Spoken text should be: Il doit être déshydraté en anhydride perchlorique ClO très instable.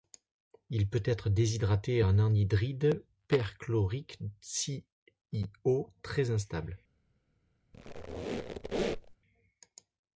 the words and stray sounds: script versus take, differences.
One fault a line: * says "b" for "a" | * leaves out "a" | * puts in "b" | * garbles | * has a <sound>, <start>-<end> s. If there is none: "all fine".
* says "peut" for "doit"
* has a squeak, 7.7-9.2 s